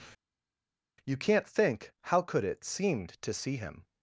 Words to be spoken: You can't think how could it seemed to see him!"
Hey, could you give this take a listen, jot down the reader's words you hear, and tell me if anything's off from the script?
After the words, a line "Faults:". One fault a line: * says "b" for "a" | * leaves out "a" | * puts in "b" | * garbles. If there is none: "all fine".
You can't think how could it seemed to see him!"
Faults:
all fine